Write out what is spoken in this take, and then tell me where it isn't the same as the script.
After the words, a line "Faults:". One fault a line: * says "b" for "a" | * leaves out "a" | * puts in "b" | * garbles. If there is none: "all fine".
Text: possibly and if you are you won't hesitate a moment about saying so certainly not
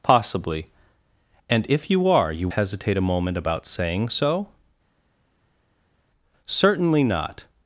possibly and if you are you hesitate a moment about saying so certainly not
Faults:
* leaves out "won't"